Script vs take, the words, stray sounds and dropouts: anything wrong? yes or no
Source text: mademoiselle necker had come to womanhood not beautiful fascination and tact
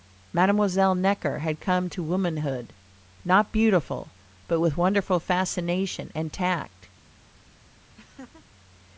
yes